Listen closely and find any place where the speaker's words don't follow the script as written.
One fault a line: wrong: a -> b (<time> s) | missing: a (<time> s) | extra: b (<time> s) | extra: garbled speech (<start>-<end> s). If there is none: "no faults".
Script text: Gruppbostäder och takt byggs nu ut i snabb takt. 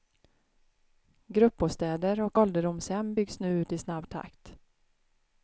wrong: takt -> ålderdomshem (2.4 s)